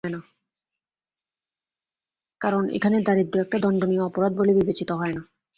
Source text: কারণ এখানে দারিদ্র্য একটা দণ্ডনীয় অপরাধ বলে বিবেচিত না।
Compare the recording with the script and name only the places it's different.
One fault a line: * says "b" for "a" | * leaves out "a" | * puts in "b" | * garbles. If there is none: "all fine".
* puts in "হয়"